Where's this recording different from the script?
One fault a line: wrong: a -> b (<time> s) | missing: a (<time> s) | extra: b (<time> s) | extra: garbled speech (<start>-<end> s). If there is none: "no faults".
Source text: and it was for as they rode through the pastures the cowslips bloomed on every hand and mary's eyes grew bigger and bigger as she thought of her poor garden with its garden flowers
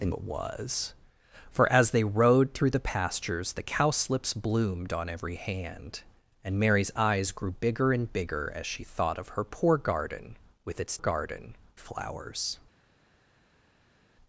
no faults